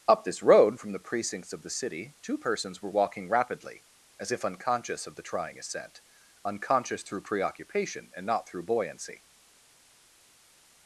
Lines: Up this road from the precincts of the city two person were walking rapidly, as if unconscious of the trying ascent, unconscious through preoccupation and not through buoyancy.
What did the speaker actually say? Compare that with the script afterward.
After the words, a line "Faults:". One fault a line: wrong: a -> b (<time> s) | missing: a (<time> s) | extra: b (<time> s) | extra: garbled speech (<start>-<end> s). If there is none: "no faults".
Up this road from the precincts of the city two persons were walking rapidly, as if unconscious of the trying ascent, unconscious through preoccupation and not through buoyancy.
Faults:
wrong: person -> persons (2.4 s)